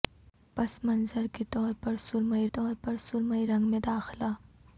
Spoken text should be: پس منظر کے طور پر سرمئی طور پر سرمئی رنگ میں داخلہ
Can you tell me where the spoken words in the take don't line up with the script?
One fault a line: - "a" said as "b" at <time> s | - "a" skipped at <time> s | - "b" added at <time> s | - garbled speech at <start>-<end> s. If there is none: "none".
none